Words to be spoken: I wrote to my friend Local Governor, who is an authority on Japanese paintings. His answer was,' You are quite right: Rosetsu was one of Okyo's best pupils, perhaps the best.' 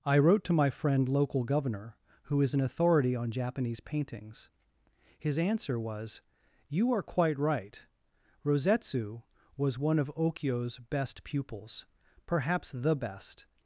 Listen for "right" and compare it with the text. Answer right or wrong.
right